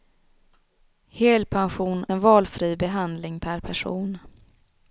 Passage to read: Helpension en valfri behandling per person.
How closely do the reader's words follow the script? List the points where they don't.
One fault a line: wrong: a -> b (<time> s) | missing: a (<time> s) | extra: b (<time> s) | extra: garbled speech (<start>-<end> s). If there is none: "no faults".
no faults